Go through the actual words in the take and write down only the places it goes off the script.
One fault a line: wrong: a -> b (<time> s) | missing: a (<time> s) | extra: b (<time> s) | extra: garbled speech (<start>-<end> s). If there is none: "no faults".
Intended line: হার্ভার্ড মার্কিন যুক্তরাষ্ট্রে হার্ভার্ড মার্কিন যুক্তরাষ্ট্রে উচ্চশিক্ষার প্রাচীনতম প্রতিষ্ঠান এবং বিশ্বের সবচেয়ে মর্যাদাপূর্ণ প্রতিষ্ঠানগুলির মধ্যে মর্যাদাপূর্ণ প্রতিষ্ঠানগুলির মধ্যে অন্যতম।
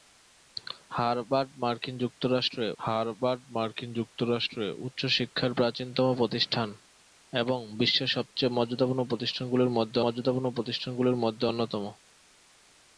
no faults